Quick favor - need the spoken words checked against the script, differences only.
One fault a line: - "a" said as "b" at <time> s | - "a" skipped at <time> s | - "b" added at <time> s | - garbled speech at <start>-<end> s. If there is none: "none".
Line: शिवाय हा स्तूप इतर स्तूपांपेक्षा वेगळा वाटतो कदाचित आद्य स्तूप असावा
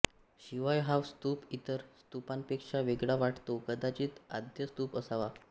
none